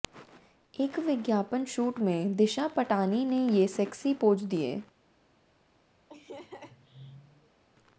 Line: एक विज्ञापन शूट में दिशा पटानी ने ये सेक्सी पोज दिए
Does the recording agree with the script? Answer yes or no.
yes